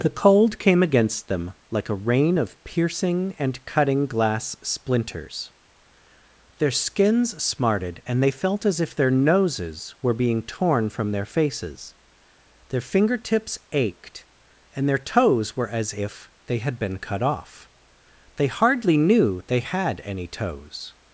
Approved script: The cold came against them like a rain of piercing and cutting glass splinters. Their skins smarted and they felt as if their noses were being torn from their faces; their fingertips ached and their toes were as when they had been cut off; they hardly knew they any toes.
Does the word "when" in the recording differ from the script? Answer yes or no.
yes